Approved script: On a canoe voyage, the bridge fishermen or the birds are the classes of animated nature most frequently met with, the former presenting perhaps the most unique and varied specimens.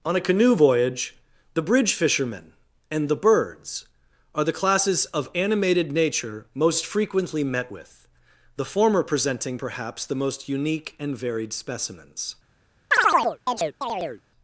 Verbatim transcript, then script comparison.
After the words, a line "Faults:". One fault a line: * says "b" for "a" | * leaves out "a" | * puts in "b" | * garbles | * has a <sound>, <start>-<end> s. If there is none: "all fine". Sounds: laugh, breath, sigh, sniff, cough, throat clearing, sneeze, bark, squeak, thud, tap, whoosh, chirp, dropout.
On a canoe voyage, the bridge fishermen and the birds are the classes of animated nature most frequently met with, the former presenting perhaps the most unique and varied specimens.
Faults:
* says "and" for "or"
* has a chirp, 12.9-14.2 s